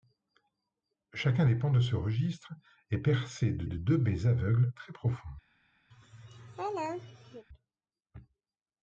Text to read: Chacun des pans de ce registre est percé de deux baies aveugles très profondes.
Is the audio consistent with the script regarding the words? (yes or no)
no